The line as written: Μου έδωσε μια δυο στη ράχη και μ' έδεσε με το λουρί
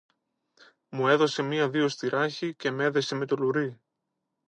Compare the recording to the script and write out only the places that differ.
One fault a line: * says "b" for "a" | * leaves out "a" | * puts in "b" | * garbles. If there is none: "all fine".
all fine